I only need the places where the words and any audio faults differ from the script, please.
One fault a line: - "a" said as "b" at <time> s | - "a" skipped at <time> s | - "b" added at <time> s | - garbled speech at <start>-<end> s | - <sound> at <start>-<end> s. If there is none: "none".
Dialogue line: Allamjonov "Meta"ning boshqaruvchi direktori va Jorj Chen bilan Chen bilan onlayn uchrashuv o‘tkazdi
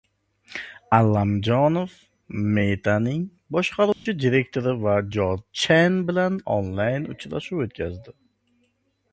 - dropout at 3.9-4.1 s
- "Chen bilan" skipped at 6.4 s